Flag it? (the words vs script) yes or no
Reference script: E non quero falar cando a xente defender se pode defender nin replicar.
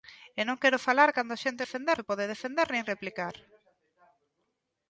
no